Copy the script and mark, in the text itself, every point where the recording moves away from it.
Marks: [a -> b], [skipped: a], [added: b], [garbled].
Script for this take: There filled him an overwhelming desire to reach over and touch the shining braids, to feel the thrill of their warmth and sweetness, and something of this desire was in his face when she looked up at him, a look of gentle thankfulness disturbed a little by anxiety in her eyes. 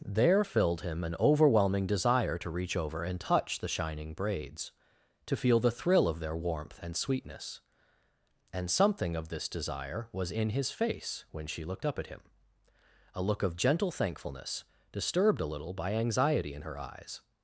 There filled him an overwhelming desire to reach over and touch the shining braids, to feel the thrill of their warmth and sweetness, and something of this desire was in his face when she looked up at him, a look of gentle thankfulness disturbed a little by anxiety in her eyes.